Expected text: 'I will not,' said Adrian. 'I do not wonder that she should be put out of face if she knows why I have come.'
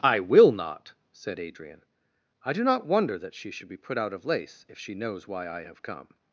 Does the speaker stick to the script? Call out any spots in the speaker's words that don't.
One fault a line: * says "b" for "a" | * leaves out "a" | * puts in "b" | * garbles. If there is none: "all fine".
* says "lace" for "face"